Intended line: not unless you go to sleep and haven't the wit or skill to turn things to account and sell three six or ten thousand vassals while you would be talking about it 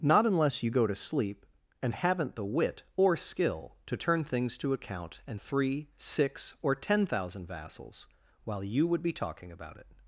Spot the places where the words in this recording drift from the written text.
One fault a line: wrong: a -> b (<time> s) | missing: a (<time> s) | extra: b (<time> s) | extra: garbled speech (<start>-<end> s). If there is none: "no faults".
missing: sell (5.4 s)